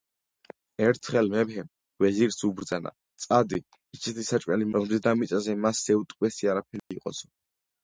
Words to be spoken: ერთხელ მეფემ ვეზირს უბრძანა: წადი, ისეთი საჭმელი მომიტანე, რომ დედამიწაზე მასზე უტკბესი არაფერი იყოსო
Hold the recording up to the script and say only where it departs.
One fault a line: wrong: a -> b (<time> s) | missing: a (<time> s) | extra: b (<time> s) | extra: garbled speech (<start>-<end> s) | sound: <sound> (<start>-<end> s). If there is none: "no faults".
missing: მომიტანე (4.7 s)
sound: dropout (6.8-6.9 s)